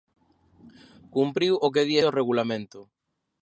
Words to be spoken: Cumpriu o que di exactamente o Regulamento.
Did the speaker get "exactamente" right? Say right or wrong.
wrong